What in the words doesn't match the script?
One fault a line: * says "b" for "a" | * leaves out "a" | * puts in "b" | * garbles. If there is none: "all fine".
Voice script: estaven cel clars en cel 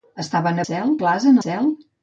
all fine